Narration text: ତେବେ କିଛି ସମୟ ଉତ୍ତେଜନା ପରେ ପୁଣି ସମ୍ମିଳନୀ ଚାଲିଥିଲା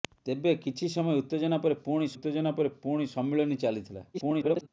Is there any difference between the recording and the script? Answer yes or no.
yes